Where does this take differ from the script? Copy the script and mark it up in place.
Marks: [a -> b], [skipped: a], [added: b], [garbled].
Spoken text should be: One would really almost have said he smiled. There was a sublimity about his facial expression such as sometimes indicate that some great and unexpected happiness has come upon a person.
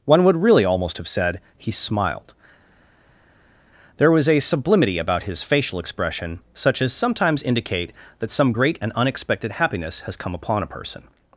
One would really almost have said he smiled. There was a sublimity about his facial expression such as sometimes indicate that some great and unexpected happiness has come upon a person.